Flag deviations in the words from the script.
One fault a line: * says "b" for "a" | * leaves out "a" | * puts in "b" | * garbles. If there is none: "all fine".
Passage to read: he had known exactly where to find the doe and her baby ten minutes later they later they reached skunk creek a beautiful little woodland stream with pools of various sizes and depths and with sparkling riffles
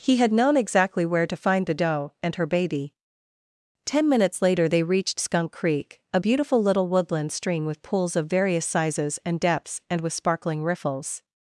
* leaves out "later they"